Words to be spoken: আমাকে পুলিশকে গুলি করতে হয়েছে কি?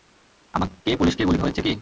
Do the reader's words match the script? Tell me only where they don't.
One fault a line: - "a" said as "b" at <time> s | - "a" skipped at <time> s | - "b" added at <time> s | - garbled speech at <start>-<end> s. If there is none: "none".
- "করতে" skipped at 1.4 s